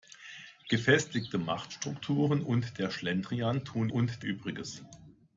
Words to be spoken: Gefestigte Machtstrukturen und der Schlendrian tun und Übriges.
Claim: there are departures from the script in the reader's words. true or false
false